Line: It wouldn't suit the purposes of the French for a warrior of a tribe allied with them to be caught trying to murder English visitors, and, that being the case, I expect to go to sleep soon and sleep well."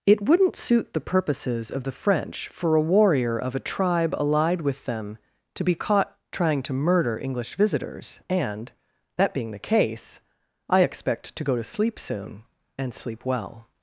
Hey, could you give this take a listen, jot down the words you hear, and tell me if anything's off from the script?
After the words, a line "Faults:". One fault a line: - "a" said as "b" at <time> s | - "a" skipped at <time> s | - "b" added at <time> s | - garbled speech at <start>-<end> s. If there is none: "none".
It wouldn't suit the purposes of the French for a warrior of a tribe allied with them to be caught trying to murder English visitors, and, that being the case, I expect to go to sleep soon and sleep well."
Faults:
none